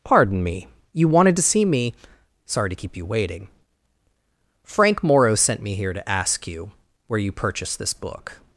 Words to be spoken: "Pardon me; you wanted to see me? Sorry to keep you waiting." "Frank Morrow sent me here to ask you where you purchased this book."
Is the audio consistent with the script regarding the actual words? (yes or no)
yes